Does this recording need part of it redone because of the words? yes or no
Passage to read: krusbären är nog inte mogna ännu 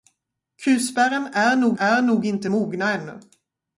yes